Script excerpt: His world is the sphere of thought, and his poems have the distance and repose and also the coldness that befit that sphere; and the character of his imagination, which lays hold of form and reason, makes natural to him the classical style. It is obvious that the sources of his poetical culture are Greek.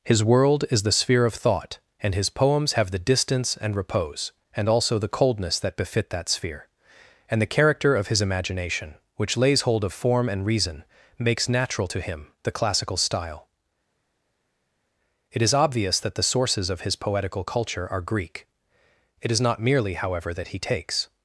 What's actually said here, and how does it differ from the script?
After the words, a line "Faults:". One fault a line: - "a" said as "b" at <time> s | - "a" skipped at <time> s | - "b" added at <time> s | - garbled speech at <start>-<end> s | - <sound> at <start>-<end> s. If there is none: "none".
His world is the sphere of thought, and his poems have the distance and repose and also the coldness that befit that sphere; and the character of his imagination, which lays hold of form and reason, makes natural to him the classical style. It is obvious that the sources of his poetical culture are Greek. It is not merely, however, that he takes
Faults:
- "It is not merely however that he takes" added at 19.2 s